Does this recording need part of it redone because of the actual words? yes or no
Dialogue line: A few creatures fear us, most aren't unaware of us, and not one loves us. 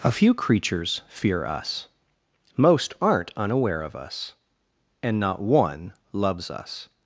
no